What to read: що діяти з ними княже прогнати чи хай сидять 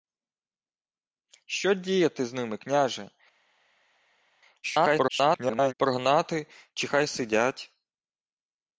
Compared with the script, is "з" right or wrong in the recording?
right